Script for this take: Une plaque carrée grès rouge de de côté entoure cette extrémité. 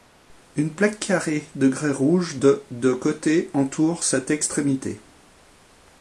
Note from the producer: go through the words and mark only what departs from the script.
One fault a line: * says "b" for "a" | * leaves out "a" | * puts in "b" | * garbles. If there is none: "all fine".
* puts in "de"